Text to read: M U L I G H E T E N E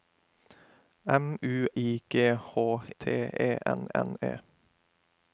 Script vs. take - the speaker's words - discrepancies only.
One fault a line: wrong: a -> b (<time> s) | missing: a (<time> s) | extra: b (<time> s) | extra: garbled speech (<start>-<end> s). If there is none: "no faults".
missing: L (1.7 s)
missing: E (2.9 s)
extra: N (3.9 s)